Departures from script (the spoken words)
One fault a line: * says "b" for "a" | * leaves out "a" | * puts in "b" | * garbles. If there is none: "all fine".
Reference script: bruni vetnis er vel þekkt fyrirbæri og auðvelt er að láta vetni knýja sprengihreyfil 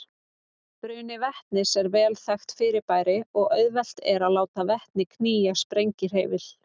all fine